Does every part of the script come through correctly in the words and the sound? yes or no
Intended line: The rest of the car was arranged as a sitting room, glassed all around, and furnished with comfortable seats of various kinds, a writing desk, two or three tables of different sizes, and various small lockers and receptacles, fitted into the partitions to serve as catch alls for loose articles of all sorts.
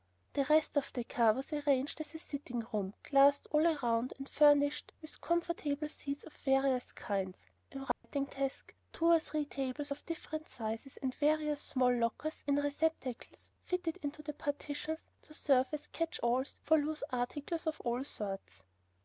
no